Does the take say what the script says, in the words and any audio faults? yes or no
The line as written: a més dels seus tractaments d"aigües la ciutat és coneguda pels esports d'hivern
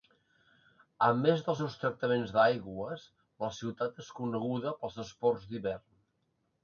yes